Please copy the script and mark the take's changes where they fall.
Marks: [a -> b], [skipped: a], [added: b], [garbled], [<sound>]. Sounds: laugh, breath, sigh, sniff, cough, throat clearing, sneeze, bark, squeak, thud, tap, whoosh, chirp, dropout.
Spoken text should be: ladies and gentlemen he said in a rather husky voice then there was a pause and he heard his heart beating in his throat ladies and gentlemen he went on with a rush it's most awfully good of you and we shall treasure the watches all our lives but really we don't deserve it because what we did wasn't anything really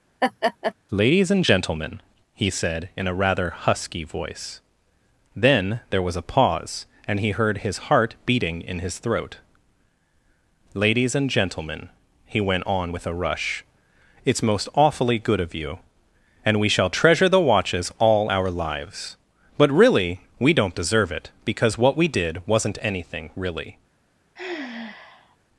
[laugh] ladies and gentlemen he said in a rather husky voice then there was a pause and he heard his heart beating in his throat ladies and gentlemen he went on with a rush it's most awfully good of you and we shall treasure the watches all our lives but really we don't deserve it because what we did wasn't anything really [sigh]